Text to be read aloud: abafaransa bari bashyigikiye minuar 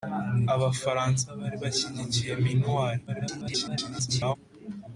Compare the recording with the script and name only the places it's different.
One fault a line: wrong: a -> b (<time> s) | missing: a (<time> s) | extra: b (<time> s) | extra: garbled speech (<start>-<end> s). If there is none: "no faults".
extra: garbled speech (3.1-4.4 s)